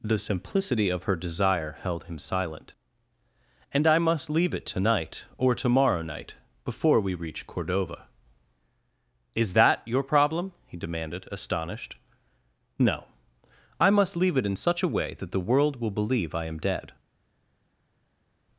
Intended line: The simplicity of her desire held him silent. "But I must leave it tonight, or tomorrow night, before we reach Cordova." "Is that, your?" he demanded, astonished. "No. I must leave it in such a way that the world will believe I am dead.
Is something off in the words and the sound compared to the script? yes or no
yes